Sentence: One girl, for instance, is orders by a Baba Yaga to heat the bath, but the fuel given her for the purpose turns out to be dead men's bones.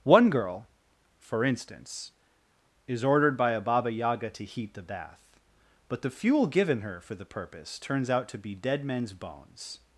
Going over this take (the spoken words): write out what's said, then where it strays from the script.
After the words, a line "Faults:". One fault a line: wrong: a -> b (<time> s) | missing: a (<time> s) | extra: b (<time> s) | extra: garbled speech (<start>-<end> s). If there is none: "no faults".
One girl, for instance, is ordered by a Baba Yaga to heat the bath, but the fuel given her for the purpose turns out to be dead men's bones.
Faults:
wrong: orders -> ordered (3.0 s)